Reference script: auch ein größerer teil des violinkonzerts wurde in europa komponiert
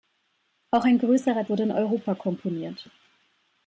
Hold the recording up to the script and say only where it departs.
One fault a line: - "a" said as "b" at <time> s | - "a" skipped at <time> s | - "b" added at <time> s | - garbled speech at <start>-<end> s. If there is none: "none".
- "teil des violinkonzerts" skipped at 1.4 s